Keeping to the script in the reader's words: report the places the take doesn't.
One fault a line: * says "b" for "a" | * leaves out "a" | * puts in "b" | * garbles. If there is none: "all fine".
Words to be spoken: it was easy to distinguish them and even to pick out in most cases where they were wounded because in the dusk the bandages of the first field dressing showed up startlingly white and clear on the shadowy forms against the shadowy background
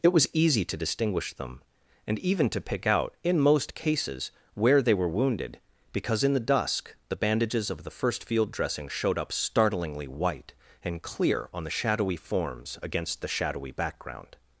all fine